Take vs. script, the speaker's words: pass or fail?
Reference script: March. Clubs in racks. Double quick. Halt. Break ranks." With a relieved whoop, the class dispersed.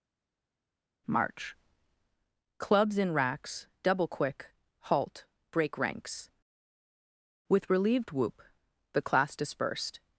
fail